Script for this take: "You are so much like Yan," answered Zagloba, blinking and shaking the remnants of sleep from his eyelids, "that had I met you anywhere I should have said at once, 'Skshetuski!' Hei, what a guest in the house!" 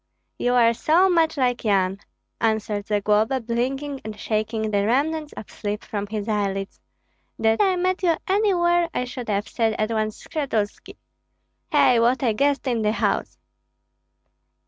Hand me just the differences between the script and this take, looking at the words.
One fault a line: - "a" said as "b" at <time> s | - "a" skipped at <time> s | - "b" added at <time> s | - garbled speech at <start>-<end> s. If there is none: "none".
- "had" skipped at 7.6 s